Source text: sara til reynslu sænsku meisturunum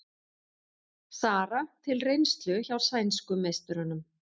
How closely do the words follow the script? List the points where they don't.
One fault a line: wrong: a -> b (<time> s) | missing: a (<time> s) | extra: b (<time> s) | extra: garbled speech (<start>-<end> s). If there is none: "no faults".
extra: hjá (2.7 s)